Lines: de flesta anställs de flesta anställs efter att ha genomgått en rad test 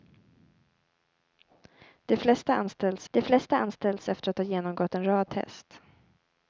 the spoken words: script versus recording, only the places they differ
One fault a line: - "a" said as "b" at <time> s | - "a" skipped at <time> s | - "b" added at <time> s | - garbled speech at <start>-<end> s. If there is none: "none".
none